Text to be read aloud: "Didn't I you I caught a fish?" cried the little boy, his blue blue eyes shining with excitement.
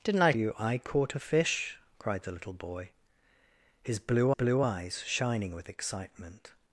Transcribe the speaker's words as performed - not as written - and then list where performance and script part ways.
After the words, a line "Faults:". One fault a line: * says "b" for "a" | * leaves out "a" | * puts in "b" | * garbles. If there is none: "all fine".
"Didn't I you I caught a fish?" cried the little boy, his blue blue eyes shining with excitement.
Faults:
all fine